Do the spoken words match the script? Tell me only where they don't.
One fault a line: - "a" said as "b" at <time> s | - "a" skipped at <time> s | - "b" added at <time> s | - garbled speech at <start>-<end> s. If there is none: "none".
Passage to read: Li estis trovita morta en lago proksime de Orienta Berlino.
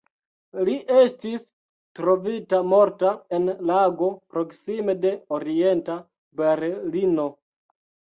none